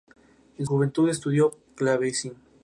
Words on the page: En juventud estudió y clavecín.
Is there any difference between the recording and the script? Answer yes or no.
no